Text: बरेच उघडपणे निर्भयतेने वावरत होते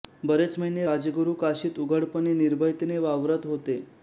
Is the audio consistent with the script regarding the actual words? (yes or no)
no